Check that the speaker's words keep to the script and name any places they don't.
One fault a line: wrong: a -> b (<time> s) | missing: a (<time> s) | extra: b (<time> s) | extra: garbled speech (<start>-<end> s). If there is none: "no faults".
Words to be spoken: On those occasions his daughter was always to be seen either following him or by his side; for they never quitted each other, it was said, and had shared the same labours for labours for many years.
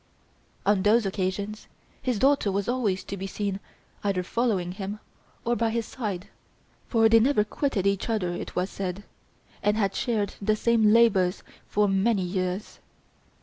missing: labours for (11.9 s)